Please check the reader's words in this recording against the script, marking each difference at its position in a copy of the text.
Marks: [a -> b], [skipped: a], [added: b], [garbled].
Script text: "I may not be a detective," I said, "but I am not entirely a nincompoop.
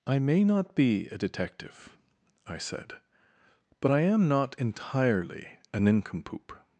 "I may not be a detective," I said, "but I am not entirely a nincompoop.